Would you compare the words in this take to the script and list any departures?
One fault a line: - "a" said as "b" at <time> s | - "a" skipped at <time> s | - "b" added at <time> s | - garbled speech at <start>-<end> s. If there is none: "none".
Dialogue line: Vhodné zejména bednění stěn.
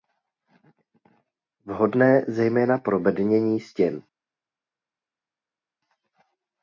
- "pro" added at 2.8 s